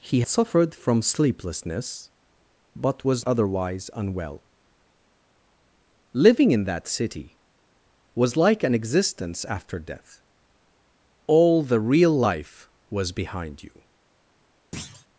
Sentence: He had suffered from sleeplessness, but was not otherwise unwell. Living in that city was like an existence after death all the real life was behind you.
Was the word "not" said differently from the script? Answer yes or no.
yes